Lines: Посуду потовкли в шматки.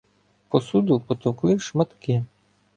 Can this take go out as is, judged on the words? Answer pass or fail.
pass